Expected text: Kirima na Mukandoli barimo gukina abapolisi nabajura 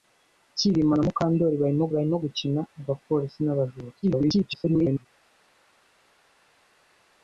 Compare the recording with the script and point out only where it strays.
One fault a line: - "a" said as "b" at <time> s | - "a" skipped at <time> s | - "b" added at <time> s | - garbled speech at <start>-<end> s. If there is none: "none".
- "barimo" added at 1.9 s
- garbled speech at 4.0-5.1 s